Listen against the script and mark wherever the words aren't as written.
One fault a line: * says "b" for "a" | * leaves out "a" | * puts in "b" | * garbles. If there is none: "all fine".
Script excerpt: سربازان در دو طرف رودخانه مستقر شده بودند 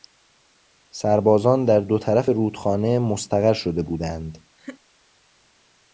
all fine